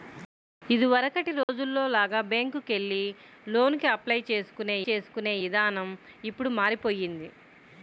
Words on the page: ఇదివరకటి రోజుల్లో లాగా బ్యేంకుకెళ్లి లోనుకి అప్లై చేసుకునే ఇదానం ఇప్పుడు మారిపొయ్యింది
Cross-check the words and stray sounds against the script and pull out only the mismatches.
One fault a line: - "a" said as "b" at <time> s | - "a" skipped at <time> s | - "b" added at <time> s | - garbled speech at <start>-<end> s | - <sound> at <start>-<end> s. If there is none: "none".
- dropout at 1.4-1.5 s
- "చేసుకునే" added at 4.9 s